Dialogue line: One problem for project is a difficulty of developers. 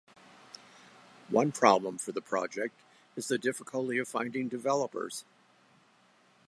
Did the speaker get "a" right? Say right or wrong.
wrong